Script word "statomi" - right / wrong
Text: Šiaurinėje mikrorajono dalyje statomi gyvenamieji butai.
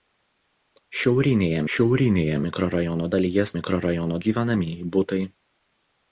wrong